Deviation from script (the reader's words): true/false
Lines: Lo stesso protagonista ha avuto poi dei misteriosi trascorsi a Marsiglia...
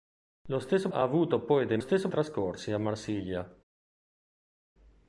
true